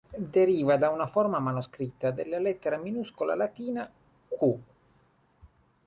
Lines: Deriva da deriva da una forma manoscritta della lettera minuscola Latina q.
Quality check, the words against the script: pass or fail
fail